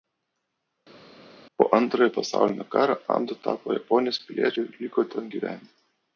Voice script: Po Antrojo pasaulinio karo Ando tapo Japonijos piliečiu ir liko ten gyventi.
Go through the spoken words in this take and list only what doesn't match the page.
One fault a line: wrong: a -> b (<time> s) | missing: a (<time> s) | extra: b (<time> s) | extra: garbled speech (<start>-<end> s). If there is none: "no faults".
no faults